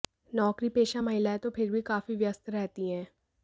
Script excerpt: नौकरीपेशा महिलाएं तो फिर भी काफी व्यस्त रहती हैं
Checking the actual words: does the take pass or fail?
pass